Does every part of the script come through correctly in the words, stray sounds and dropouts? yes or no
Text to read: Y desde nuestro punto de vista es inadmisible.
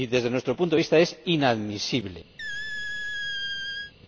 no